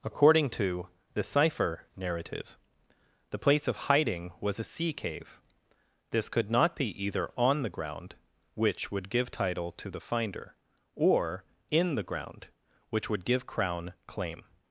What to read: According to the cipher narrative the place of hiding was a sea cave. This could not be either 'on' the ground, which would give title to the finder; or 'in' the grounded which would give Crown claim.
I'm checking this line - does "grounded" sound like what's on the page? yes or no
no